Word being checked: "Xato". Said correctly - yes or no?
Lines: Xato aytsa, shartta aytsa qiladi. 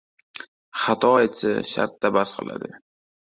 yes